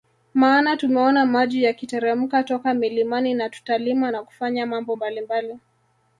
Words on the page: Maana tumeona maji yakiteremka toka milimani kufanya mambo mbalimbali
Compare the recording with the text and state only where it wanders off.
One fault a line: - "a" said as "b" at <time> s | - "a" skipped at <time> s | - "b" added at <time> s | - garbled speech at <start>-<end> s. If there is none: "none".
- "na tutalima na" added at 3.3 s